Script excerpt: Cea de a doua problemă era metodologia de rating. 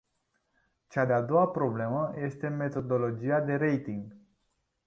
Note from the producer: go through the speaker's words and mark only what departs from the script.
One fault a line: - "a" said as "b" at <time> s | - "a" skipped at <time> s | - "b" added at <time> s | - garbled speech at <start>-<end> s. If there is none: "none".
- "era" said as "este" at 2.1 s